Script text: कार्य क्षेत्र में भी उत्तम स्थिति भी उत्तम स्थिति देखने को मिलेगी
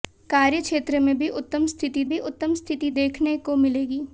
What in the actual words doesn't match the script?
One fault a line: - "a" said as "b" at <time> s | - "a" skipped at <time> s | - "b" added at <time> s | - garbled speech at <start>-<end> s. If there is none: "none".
none